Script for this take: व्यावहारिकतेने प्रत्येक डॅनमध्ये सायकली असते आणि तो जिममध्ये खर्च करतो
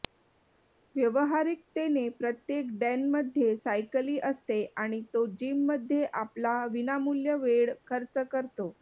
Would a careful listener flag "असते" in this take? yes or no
no